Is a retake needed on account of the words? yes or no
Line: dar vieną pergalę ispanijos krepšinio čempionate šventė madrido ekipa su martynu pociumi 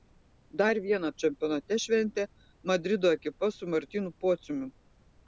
yes